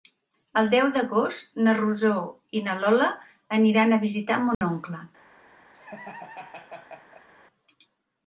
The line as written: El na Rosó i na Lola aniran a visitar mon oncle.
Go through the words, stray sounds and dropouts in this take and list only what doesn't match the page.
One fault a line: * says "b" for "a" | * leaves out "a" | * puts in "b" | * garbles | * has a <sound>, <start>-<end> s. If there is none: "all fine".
* puts in "deu d'agost"
* has a dropout, 4.5-4.6 s
* has a laugh, 5.7-7.3 s